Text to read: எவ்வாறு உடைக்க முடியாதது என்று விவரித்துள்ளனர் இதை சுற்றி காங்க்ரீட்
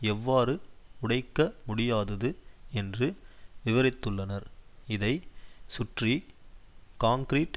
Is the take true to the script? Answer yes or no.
yes